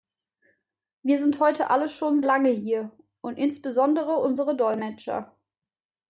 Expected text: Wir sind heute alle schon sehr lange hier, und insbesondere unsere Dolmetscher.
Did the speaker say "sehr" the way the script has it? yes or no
no